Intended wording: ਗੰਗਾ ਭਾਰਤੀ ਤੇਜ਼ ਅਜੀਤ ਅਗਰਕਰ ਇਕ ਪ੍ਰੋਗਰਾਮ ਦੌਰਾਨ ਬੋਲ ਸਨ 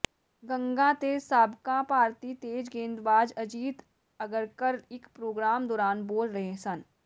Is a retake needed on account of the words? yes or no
yes